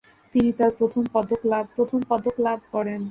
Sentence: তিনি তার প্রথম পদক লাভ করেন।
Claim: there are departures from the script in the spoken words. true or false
true